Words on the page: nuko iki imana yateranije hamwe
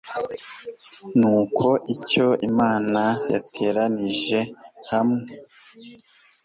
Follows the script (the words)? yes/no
no